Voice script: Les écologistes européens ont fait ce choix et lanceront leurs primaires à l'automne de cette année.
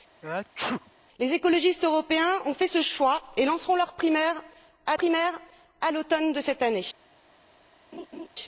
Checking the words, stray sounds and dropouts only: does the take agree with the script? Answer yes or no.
no